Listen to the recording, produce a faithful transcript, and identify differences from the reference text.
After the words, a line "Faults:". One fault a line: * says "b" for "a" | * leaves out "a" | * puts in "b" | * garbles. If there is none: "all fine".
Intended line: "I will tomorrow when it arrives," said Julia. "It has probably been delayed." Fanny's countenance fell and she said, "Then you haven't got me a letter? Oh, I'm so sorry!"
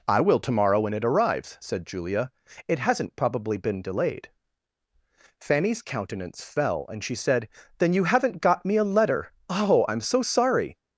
"I will tomorrow when it arrives," said Julia. "It hasn't probably been delayed." Fanny's countenance fell and she said, "Then you haven't got me a letter? Oh, I'm so sorry!"
Faults:
* says "hasn't" for "has"